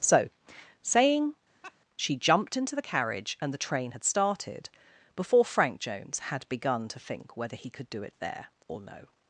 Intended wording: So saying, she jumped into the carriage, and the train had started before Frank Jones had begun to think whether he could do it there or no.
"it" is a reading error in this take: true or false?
false